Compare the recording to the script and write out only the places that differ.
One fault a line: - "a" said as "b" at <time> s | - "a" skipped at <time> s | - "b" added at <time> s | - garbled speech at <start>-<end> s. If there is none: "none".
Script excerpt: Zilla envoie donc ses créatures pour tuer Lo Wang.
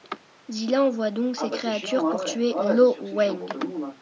none